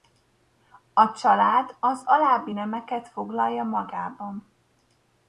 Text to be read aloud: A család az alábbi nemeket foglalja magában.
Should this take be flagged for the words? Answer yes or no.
no